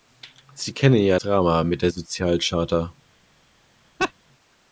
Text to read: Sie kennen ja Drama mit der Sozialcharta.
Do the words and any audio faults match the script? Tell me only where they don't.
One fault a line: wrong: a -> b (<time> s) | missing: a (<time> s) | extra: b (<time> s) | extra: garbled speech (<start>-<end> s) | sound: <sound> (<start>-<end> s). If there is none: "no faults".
sound: laugh (4.0-4.1 s)